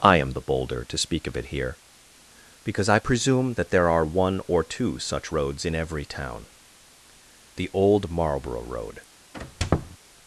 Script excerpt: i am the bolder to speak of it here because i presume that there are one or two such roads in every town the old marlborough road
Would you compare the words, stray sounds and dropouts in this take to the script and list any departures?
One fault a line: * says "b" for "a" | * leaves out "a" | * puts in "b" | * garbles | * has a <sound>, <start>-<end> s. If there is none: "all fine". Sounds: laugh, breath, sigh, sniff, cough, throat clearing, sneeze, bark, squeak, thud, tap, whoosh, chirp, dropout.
* has a squeak, 9.3-10.0 s